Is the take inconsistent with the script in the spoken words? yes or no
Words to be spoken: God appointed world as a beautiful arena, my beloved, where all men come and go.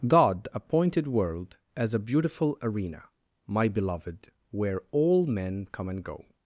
no